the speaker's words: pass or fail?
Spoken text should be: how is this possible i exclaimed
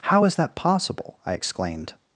fail